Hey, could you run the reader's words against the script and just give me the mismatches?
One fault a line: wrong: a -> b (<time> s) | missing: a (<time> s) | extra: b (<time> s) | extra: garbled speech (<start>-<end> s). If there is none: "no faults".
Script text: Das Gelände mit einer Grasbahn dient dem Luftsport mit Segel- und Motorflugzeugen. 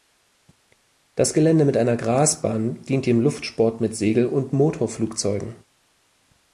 no faults